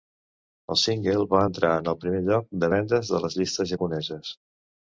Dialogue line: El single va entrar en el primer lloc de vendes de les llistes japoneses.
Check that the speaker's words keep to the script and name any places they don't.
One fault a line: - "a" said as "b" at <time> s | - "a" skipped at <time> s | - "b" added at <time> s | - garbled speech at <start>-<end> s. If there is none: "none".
none